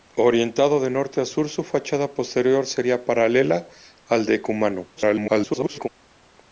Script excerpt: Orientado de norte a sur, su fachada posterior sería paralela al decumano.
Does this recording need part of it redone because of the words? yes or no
yes